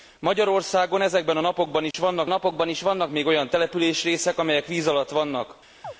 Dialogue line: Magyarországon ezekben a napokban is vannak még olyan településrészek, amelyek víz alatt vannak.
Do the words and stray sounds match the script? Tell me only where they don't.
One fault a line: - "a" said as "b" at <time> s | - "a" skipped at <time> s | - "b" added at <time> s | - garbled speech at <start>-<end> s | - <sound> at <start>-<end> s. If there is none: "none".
- dropout at 1.9-1.9 s
- "napokban is vannak" added at 2.3 s
- chirp at 5.8-5.9 s